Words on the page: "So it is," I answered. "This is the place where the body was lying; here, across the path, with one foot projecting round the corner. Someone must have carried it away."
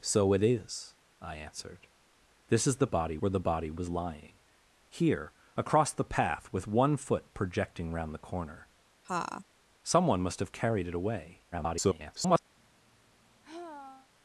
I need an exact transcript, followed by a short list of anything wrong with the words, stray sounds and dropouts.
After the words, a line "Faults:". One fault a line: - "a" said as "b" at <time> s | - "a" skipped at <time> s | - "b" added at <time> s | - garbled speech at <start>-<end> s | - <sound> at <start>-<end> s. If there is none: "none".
"So it is," I answered. "This is the body where the body was lying; here, across the path, with one foot projecting round the corner. Someone must have carried it away." [garbled]
Faults:
- "place" said as "body" at 2.9 s
- laugh at 9.0-9.4 s
- garbled speech at 11.5-12.4 s
- sigh at 12.6-14.1 s